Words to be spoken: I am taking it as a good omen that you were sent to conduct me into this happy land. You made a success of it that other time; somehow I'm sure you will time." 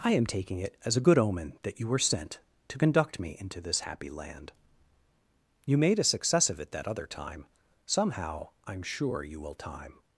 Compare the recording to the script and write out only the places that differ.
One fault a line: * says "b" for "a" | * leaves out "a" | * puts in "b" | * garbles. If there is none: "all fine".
all fine